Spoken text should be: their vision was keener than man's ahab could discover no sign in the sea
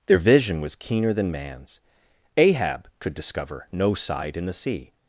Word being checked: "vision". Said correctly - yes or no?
yes